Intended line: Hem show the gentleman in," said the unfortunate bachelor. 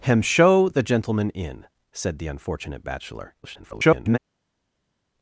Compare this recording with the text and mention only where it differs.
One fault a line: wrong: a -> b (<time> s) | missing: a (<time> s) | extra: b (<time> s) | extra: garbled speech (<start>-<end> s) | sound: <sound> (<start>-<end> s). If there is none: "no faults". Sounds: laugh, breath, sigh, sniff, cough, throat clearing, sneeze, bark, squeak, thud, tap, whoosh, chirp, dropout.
extra: garbled speech (3.4-4.2 s)